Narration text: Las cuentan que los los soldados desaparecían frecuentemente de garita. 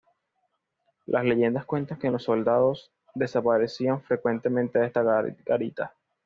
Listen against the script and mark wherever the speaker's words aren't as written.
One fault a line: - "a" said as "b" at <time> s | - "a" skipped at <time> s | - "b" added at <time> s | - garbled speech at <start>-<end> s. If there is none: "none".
- "leyendas" added at 1.2 s
- "los" skipped at 2.2 s
- "esta" added at 4.9 s